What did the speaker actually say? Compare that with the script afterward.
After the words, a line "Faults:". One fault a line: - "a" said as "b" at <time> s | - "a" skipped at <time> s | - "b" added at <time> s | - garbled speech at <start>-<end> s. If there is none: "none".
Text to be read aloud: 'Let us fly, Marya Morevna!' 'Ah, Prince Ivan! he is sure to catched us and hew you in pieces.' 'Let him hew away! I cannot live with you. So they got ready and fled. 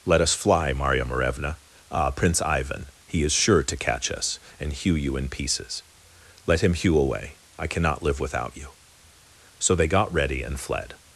'Let us fly, Marya Morevna!' 'Ah, Prince Ivan! he is sure to catch us and hew you in pieces.' 'Let him hew away! I cannot live without you. So they got ready and fled.
Faults:
- "catched" said as "catch" at 3.8 s
- "with" said as "without" at 8.2 s